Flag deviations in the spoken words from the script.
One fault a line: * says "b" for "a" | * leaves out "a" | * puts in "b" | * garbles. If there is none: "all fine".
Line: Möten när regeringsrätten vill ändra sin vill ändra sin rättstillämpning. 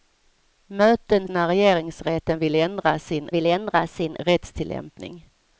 all fine